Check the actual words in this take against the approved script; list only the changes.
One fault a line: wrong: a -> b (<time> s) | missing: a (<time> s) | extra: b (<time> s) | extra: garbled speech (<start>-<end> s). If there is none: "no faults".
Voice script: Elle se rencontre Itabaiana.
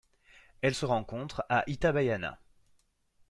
extra: à (1.5 s)